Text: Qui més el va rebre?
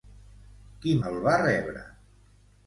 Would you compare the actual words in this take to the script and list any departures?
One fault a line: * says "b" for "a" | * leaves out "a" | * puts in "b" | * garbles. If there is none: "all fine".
* leaves out "més"